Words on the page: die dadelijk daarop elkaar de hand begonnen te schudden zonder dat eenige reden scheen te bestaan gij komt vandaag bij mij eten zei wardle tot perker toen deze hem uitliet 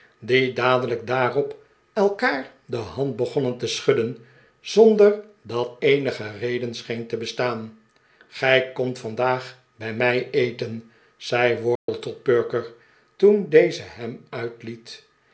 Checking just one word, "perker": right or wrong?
right